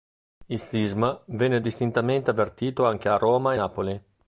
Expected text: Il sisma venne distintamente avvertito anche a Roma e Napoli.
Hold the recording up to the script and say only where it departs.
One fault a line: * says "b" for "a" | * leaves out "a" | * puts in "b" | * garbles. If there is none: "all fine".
all fine